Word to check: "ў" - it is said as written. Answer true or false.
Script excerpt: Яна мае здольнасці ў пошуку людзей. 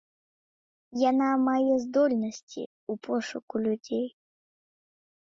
true